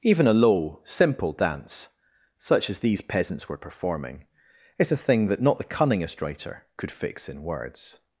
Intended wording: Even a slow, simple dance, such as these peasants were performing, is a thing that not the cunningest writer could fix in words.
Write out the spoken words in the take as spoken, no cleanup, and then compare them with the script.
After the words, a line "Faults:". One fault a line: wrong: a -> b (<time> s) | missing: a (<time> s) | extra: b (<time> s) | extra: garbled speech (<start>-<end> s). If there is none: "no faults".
Even a low, simple dance, such as these peasants were performing, is a thing that not the cunningest writer could fix in words.
Faults:
wrong: slow -> low (0.3 s)